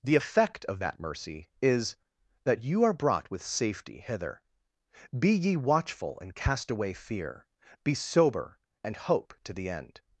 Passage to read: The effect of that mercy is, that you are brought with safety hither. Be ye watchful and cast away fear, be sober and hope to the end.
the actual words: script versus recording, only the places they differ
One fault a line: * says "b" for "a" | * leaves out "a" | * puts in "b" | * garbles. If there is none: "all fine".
all fine